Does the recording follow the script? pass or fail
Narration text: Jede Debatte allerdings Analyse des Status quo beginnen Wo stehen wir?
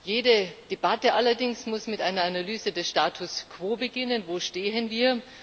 fail